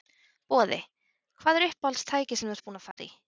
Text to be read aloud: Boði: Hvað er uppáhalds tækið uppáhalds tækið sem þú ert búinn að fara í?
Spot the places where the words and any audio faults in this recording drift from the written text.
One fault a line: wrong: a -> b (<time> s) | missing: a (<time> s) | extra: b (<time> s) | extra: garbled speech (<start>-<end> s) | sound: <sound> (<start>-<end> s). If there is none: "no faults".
missing: uppáhalds tækið (2.4 s)
sound: dropout (2.9-3.0 s)